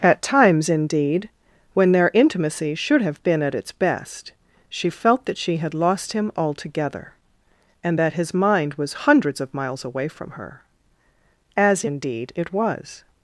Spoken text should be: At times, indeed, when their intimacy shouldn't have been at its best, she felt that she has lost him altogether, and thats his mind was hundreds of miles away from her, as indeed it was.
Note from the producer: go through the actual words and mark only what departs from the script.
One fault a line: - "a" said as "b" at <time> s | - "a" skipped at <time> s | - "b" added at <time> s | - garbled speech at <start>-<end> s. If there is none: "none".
- "shouldn't" said as "should" at 2.8 s
- "has" said as "had" at 5.6 s
- "thats" said as "that" at 8.0 s